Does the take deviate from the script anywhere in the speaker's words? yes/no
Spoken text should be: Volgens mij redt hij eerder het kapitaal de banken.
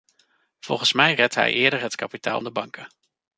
no